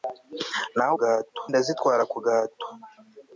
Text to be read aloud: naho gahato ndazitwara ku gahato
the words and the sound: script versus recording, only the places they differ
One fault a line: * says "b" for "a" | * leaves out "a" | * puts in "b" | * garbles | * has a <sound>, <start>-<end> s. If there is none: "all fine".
all fine